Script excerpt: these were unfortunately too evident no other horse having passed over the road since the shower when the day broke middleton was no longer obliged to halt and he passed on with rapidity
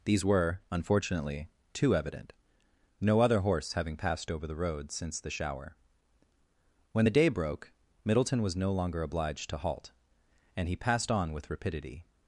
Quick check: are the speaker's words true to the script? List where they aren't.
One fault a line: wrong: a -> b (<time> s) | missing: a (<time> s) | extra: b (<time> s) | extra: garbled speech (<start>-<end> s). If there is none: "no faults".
no faults